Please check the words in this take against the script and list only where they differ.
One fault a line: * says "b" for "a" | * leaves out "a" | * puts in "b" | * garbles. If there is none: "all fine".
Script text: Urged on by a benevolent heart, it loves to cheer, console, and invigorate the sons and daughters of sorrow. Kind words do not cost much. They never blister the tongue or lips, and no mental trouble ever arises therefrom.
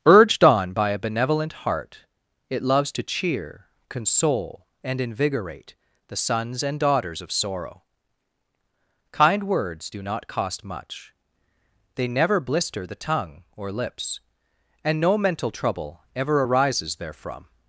all fine